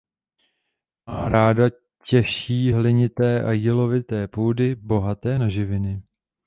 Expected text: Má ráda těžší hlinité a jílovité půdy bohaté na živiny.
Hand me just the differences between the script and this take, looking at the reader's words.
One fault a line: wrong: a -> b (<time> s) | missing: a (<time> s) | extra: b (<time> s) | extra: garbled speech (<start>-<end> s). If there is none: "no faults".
no faults